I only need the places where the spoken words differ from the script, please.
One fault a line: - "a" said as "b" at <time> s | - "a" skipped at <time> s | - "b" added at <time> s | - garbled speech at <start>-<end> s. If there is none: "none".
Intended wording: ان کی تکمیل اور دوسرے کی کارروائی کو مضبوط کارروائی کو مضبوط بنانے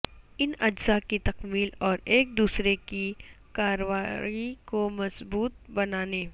- "اجزاء" added at 0.6 s
- "ایک" added at 2.1 s
- "کارروائی کو مضبوط" skipped at 5.7 s